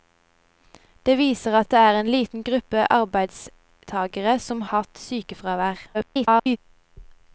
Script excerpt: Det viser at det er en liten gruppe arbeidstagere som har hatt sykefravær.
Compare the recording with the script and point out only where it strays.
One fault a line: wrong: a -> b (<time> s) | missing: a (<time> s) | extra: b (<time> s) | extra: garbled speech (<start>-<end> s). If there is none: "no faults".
missing: har (4.7 s)
extra: garbled speech (5.9-6.6 s)